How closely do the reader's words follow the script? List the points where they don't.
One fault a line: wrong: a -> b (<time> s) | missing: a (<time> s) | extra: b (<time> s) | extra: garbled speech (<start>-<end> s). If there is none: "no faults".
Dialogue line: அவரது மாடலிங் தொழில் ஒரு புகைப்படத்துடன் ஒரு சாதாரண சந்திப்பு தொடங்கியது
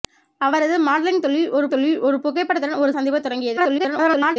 extra: தொழில் ஒரு (1.7 s)
missing: சாதாரண (2.9 s)
extra: garbled speech (3.6-4.4 s)